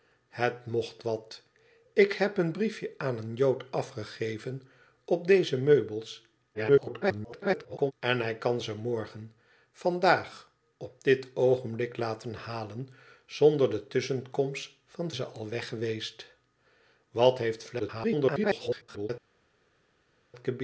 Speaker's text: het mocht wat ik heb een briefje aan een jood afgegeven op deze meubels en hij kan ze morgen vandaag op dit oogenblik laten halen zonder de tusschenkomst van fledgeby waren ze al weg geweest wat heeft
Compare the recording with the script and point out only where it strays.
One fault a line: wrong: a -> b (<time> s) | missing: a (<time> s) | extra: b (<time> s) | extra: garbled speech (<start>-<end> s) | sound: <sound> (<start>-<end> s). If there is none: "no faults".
extra: garbled speech (6.5-7.9 s)
missing: fledgeby waren (15.1 s)
extra: garbled speech (17.8-19.1 s)